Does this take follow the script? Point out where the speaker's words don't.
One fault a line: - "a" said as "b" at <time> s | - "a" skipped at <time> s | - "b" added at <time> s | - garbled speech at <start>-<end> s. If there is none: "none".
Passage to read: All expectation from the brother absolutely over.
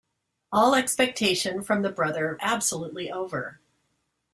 none